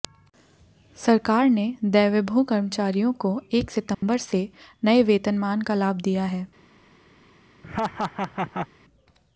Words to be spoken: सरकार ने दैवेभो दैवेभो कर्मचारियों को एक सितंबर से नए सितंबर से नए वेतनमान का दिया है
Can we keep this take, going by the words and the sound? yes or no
no